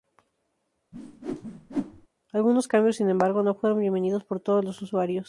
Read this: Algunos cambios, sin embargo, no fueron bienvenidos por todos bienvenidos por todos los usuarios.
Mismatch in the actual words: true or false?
true